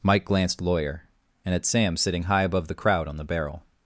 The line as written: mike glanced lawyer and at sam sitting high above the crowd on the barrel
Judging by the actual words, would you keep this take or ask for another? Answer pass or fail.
pass